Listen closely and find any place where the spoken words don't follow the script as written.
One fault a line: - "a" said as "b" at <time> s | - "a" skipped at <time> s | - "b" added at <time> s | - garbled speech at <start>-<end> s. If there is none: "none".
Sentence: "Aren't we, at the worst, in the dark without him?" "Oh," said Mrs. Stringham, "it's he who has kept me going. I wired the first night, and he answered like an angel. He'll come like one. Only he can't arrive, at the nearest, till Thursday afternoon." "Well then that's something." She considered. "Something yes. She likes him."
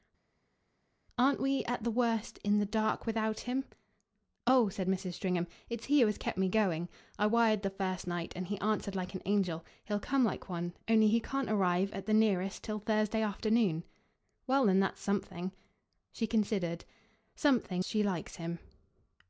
- "yes" skipped at 17.8 s